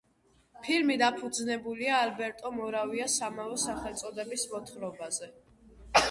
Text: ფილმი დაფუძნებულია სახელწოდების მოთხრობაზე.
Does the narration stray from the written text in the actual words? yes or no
yes